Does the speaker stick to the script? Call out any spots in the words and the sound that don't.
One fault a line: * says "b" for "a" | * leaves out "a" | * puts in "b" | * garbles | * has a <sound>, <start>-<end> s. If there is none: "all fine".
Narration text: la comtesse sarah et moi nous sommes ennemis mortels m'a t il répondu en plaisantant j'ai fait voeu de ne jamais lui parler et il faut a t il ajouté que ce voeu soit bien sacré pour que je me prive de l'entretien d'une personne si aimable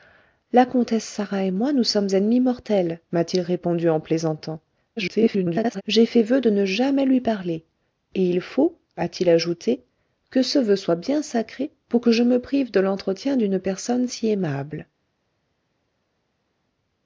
* garbles